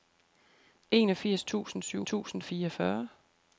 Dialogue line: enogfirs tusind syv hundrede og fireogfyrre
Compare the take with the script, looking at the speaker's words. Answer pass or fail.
fail